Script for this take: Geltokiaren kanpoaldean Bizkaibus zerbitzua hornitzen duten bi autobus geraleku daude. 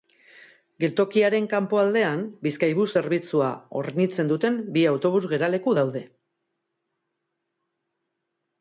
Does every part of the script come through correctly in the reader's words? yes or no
yes